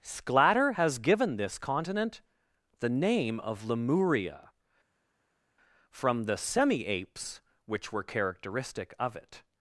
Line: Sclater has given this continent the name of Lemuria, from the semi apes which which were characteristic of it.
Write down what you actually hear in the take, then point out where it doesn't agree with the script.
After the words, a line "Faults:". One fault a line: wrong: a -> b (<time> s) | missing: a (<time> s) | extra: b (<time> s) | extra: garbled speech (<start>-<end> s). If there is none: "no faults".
Sclater has given this continent the name of Lemuria, from the semi apes which were characteristic of it.
Faults:
missing: which (7.9 s)